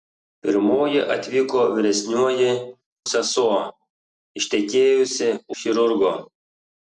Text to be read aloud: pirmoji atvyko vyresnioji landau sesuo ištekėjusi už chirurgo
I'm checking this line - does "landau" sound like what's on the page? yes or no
no